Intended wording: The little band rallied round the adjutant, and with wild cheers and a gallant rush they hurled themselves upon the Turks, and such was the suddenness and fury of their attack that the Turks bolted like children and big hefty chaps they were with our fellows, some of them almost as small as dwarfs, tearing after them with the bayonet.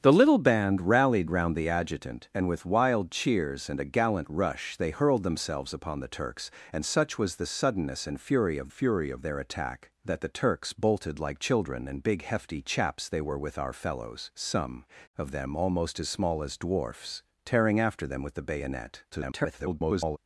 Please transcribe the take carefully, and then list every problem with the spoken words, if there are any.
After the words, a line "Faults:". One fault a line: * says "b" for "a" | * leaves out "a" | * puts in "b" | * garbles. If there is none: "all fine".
The little band rallied round the adjutant, and with wild cheers and a gallant rush they hurled themselves upon the Turks, and such was the suddenness and fury of fury of their attack that the Turks bolted like children and big hefty chaps they were with our fellows, some of them almost as small as dwarfs, tearing after them with the bayonet. [garbled]
Faults:
* puts in "fury of"
* garbles